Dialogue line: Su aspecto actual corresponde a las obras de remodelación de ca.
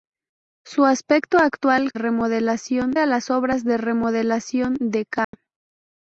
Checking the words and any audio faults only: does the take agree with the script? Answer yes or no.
no